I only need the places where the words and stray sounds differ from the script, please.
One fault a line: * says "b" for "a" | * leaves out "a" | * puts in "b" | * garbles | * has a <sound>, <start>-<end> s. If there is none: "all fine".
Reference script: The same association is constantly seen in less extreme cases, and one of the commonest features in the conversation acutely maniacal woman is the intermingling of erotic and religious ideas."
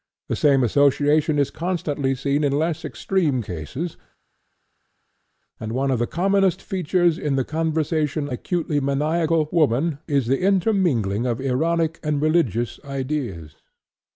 all fine